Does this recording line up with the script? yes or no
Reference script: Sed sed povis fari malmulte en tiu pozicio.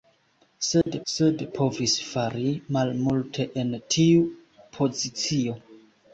yes